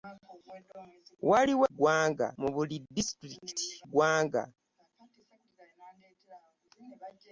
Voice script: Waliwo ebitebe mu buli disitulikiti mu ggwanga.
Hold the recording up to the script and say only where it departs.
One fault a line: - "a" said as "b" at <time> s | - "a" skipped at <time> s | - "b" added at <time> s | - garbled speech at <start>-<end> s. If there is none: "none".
- "ebitebe" said as "ggwanga" at 1.7 s
- "mu" skipped at 3.7 s